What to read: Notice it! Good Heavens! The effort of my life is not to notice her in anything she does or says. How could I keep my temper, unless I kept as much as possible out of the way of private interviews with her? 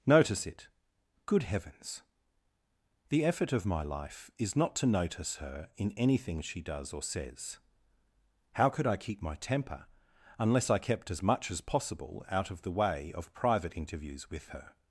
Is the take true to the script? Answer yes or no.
yes